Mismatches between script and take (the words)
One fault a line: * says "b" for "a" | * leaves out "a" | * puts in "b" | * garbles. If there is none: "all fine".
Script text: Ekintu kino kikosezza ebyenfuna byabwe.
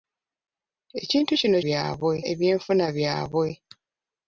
* says "byabwe" for "kikosezza"